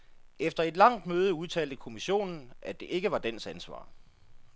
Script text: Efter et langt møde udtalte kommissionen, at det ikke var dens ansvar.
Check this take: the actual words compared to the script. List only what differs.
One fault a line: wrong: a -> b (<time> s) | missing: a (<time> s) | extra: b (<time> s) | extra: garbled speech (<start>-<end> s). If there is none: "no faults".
no faults